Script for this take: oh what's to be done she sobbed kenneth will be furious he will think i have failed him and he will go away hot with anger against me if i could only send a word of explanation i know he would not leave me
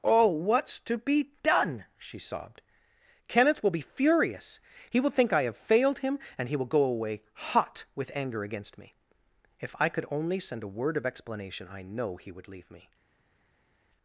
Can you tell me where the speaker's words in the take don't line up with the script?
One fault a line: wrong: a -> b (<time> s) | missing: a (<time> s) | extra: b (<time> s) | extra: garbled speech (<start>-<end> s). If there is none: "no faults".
missing: not (12.5 s)